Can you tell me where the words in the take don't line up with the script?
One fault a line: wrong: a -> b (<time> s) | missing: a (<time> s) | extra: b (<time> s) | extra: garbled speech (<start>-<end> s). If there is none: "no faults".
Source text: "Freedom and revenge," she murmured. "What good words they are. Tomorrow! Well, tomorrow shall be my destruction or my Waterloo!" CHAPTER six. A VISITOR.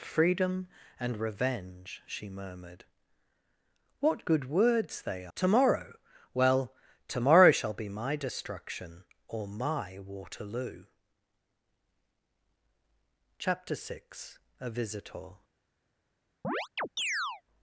missing: are (5.3 s)